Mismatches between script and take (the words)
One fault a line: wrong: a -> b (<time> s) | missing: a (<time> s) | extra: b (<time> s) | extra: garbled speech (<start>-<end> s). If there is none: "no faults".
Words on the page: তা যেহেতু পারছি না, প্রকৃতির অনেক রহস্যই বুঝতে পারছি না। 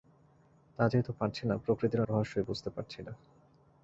missing: অনেক (2.0 s)